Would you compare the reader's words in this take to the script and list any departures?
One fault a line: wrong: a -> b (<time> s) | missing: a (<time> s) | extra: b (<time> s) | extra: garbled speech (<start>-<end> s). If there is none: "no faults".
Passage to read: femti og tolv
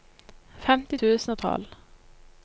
extra: tusen (0.9 s)